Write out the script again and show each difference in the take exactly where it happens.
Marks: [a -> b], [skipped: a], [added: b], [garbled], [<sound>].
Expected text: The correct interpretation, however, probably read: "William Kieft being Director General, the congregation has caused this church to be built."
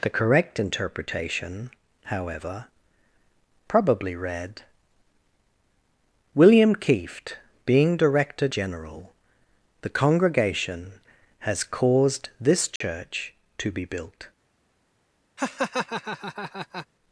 The correct interpretation, however, probably read: "William Kieft being Director General, the congregation has caused this church [dropout] to be built." [laugh]